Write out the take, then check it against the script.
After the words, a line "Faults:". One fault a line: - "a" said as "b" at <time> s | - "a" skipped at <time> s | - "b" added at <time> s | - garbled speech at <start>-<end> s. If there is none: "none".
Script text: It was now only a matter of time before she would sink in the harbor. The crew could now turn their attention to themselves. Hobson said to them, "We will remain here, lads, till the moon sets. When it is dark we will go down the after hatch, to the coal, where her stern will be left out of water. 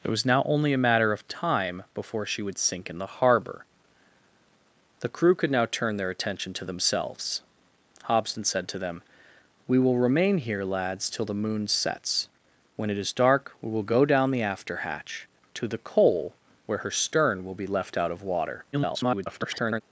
It was now only a matter of time before she would sink in the harbor. The crew could now turn their attention to themselves. Hobson said to them, "We will remain here, lads, till the moon sets. When it is dark we will go down the after hatch, to the coal, where her stern will be left out of water. [garbled]
Faults:
- garbled speech at 18.7-19.8 s